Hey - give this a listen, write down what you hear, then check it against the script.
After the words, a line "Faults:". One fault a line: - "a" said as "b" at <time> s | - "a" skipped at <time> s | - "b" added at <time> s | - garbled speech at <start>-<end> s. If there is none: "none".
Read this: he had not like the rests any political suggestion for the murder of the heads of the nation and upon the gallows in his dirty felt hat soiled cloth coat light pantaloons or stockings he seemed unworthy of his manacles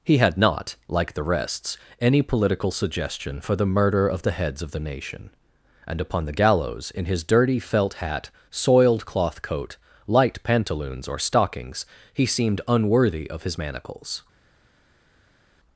he had not like the rests any political suggestion for the murder of the heads of the nation and upon the gallows in his dirty felt hat soiled cloth coat light pantaloons or stockings he seemed unworthy of his manacles
Faults:
none